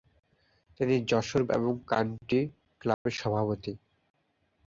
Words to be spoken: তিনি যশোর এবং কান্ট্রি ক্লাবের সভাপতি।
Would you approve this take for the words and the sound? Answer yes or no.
no